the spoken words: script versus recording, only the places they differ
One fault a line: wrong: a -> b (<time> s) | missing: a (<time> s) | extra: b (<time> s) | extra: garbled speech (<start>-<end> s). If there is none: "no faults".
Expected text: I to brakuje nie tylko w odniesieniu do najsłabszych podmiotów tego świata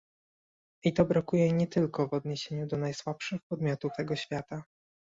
no faults